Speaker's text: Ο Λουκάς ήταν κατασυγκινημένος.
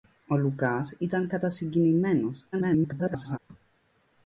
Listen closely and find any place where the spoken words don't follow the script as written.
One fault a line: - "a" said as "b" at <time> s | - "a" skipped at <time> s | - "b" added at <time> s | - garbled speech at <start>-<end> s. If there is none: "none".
- garbled speech at 2.5-3.4 s